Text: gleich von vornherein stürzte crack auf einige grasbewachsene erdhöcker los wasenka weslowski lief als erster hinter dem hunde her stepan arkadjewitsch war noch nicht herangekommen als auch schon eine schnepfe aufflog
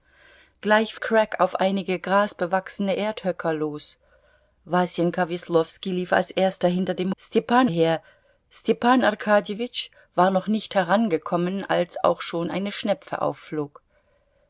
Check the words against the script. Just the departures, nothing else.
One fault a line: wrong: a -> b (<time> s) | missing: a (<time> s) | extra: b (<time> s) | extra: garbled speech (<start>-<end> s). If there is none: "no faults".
missing: von vornherein stürzte (0.9 s)
wrong: hunde -> stepan (7.2 s)